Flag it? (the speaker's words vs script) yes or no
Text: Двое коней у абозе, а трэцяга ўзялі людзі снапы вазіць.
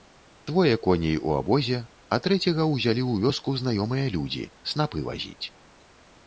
yes